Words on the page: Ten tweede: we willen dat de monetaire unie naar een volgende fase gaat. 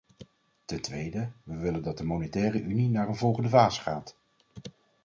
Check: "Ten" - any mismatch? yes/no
no